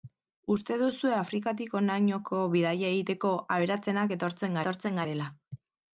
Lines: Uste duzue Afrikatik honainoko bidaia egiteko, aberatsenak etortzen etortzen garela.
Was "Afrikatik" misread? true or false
false